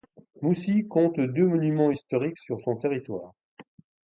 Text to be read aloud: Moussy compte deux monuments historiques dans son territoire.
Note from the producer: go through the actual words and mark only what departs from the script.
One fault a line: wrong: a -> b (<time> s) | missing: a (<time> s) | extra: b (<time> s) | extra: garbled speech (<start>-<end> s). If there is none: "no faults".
wrong: dans -> sur (2.4 s)